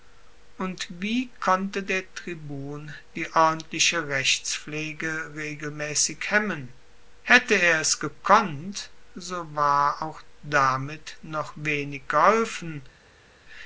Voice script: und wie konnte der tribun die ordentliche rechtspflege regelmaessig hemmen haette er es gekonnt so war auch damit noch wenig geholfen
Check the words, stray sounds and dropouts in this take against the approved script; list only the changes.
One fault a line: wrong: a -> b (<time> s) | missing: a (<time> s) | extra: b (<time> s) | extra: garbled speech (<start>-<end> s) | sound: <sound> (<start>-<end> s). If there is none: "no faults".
no faults